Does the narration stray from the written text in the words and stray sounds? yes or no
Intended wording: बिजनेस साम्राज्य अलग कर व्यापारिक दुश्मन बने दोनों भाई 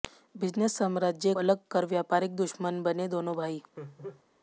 yes